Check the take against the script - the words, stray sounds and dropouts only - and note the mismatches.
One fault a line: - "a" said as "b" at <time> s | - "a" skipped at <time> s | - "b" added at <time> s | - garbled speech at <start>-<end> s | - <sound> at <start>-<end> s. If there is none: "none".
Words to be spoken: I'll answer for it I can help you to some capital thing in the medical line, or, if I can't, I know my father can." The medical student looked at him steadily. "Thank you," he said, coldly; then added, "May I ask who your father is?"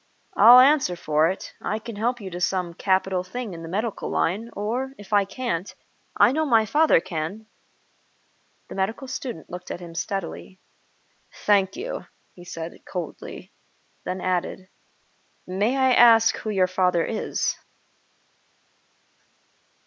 none